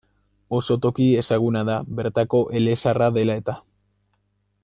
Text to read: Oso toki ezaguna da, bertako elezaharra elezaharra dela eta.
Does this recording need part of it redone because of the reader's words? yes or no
yes